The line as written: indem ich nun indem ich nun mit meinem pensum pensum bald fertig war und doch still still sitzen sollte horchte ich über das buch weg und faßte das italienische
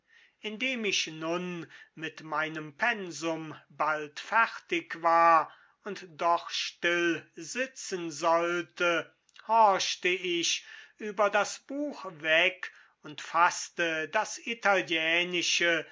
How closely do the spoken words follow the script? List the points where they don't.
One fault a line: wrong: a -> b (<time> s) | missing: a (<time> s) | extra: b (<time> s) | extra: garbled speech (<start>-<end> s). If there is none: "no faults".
missing: indem ich nun (1.7 s)
missing: pensum (3.5 s)
missing: still (7.3 s)